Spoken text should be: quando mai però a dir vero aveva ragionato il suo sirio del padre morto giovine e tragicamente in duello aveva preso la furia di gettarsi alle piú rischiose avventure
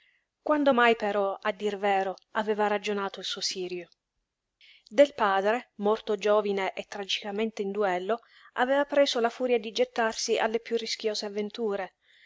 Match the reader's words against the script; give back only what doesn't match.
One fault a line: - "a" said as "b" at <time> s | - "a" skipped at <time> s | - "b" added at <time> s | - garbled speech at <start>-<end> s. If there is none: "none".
none